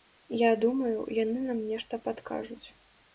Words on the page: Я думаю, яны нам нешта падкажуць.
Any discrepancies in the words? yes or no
no